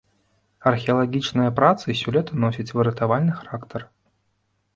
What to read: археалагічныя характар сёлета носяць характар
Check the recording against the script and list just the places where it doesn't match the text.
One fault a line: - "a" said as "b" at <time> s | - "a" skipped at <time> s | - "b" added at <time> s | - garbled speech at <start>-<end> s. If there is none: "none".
- "характар" said as "працы" at 1.6 s
- "выратавальны" added at 2.8 s